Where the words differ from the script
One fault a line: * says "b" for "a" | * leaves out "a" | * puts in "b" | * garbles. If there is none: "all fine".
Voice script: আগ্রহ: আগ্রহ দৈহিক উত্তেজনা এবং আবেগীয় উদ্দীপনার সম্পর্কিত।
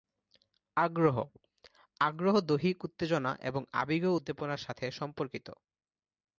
* puts in "সাথে"